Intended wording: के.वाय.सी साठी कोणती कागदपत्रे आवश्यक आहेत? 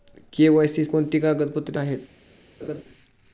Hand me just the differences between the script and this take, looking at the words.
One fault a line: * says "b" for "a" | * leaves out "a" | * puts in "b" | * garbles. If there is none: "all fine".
* leaves out "साठी"
* leaves out "आवश्यक"